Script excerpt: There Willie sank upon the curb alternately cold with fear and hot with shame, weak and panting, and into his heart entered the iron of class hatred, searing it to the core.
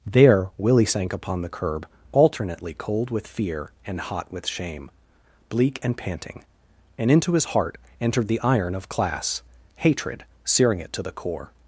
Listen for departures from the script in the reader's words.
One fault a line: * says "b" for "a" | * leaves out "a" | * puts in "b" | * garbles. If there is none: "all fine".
* says "bleak" for "weak"